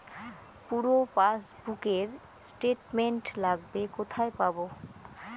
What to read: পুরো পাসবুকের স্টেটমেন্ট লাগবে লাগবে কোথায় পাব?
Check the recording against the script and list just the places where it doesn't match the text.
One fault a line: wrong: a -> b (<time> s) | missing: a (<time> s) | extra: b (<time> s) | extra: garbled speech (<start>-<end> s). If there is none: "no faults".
missing: লাগবে (3.8 s)